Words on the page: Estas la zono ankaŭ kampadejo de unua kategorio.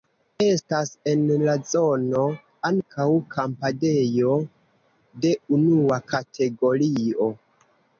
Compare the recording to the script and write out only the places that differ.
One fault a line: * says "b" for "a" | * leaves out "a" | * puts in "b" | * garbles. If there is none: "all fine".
* puts in "en"